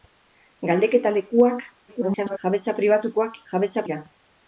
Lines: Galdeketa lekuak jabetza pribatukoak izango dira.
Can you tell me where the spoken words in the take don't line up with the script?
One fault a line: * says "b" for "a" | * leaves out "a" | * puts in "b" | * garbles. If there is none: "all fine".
* garbles
* says "jabetza" for "izango"